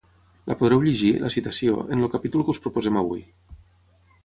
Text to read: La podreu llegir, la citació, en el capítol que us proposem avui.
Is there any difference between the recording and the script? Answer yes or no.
no